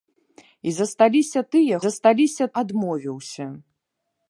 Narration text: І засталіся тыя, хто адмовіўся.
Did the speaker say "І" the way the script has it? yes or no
yes